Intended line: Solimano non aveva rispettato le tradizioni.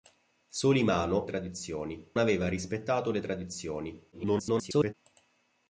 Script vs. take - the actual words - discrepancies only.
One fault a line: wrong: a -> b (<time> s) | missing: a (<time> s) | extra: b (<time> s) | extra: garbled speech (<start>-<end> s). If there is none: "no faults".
wrong: non -> tradizioni (1.2 s)
extra: garbled speech (4.1-4.9 s)